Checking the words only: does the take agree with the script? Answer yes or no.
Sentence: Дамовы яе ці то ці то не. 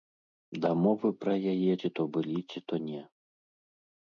no